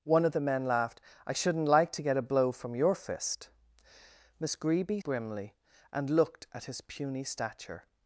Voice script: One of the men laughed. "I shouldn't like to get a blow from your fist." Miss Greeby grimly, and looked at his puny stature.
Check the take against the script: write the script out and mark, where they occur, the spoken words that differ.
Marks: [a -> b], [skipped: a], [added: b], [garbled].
One of the men laughed. "I shouldn't like to get a blow from your fist." Miss Greeby grimly, and looked at his puny stature.